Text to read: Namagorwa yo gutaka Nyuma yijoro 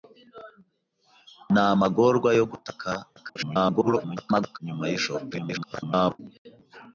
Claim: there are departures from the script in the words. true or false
true